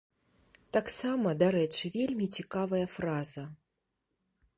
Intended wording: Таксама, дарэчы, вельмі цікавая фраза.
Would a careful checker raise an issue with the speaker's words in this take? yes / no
no